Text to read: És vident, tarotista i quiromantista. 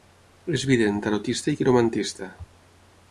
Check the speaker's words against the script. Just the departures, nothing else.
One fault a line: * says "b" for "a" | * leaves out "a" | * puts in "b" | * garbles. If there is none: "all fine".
all fine